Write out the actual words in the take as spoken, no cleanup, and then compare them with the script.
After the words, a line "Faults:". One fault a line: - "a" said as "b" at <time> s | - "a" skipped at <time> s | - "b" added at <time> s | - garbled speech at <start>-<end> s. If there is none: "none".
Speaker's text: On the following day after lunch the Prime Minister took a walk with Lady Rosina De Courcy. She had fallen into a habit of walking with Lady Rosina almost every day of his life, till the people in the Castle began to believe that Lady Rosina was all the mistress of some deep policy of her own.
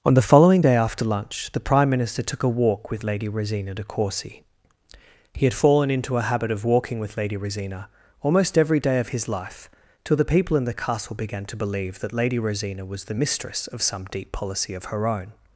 On the following day after lunch the Prime Minister took a walk with Lady Rosina De Courcy. He had fallen into a habit of walking with Lady Rosina almost every day of his life, till the people in the Castle began to believe that Lady Rosina was the mistress of some deep policy of her own.
Faults:
- "She" said as "He" at 5.3 s
- "all" skipped at 13.0 s